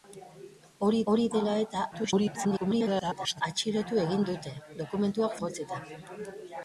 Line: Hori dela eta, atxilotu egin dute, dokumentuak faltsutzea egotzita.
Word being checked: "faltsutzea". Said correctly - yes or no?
no